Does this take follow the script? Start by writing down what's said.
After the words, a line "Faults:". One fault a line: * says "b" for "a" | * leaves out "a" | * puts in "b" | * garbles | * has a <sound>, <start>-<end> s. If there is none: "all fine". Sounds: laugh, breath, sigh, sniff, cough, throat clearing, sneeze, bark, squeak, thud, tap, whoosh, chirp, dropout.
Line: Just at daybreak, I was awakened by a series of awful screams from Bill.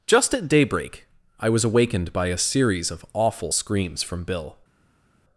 Just at daybreak, I was awakened by a series of awful screams from Bill.
Faults:
all fine